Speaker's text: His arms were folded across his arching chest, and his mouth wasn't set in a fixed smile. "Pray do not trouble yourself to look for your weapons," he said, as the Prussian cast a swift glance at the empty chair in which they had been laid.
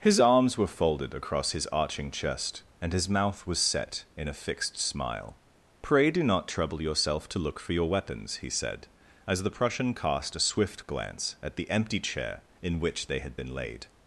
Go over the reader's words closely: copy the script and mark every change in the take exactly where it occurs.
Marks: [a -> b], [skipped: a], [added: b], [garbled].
His arms were folded across his arching chest, and his mouth [wasn't -> was] set in a fixed smile. "Pray do not trouble yourself to look for your weapons," he said, as the Prussian cast a swift glance at the empty chair in which they had been laid.